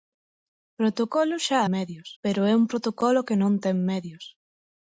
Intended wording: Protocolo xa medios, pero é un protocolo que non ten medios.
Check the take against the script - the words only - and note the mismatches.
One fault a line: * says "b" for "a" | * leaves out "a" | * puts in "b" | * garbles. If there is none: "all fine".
all fine